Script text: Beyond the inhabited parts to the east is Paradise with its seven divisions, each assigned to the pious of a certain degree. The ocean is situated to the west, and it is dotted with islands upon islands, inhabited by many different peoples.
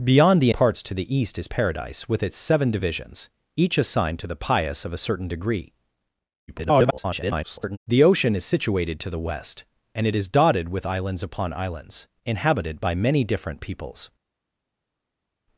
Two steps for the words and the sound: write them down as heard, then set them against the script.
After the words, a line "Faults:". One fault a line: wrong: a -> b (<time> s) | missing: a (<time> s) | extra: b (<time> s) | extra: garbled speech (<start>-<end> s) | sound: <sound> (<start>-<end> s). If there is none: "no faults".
Beyond the parts to the east is Paradise with its seven divisions, each assigned to the pious of a certain degree. [garbled] The ocean is situated to the west, and it is dotted with islands upon islands, inhabited by many different peoples.
Faults:
missing: inhabited (0.5 s)
extra: garbled speech (6.5-7.8 s)